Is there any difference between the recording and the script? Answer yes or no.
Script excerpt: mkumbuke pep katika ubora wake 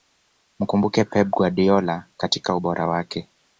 yes